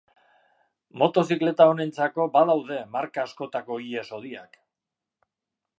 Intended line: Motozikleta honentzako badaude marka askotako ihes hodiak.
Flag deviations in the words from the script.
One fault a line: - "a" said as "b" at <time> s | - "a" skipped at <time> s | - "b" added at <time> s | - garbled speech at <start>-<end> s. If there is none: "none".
none